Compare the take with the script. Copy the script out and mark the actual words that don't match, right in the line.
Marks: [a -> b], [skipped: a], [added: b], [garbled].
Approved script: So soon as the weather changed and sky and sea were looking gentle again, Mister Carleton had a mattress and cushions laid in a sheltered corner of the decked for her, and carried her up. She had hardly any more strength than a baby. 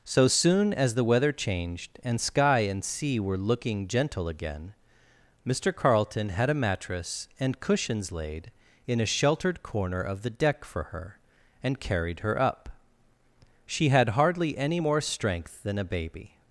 So soon as the weather changed and sky and sea were looking gentle again, Mister Carleton had a mattress and cushions laid in a sheltered corner of the [decked -> deck] for her, and carried her up. She had hardly any more strength than a baby.